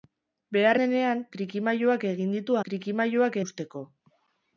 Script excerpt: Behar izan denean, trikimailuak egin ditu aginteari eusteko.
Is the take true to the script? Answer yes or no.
no